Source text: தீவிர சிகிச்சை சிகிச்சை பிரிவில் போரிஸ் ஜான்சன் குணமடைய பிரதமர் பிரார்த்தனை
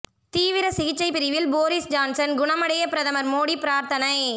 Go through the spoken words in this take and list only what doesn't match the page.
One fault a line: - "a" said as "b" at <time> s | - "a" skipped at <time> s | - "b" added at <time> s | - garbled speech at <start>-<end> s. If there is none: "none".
- "சிகிச்சை" skipped at 1.1 s
- "மோடி" added at 3.3 s